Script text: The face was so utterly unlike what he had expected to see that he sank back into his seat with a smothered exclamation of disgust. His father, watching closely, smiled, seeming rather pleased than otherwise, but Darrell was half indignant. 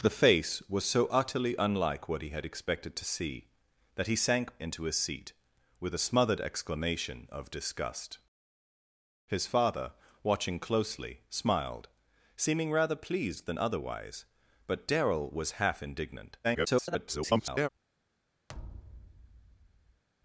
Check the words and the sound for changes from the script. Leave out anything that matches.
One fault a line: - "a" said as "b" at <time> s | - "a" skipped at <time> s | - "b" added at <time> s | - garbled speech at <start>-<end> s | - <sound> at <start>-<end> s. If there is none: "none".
- "back" skipped at 4.6 s
- garbled speech at 16.4-17.7 s
- thud at 18.5-20.0 s